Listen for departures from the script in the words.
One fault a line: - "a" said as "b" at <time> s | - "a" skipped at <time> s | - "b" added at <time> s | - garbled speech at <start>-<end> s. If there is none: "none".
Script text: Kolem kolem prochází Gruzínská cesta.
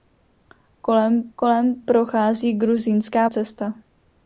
none